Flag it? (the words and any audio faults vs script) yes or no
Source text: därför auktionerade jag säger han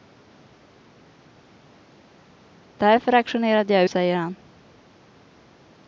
no